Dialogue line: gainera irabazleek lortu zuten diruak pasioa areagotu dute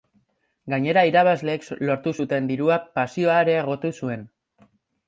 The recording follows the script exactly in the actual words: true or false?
false